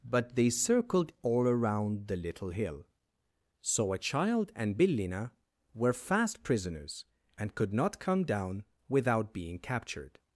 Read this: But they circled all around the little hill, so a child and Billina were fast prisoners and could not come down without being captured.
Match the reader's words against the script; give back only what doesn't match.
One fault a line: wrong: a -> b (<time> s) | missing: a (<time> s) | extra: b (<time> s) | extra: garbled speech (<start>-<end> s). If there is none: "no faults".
no faults